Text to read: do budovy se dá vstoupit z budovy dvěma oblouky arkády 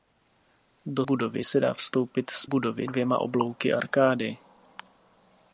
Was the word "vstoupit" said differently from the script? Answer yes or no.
no